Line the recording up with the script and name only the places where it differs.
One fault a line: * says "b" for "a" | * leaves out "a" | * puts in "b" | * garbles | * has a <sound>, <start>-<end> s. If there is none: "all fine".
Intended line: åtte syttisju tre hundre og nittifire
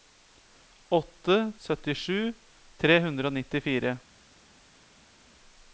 all fine